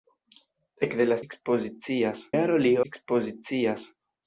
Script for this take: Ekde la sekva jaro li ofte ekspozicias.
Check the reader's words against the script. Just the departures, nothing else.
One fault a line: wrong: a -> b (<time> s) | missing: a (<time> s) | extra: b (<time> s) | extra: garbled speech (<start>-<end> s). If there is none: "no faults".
wrong: sekva -> ekspozicias (1.3 s)
missing: ofte (2.7 s)